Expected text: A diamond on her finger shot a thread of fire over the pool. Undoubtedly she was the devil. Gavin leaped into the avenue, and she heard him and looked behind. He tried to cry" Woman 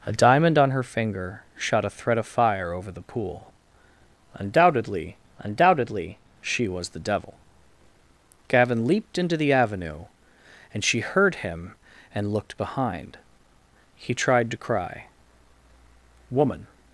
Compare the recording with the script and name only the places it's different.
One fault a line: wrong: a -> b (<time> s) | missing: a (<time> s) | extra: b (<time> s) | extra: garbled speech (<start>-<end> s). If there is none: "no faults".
extra: undoubtedly (5.4 s)